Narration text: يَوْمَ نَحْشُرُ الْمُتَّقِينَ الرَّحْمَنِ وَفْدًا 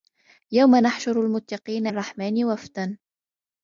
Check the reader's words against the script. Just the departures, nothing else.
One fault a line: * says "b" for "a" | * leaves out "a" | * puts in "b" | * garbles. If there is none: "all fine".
all fine